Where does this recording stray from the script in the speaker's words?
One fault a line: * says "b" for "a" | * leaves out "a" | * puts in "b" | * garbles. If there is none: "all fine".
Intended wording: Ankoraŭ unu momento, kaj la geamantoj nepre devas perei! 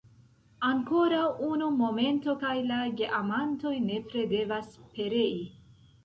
all fine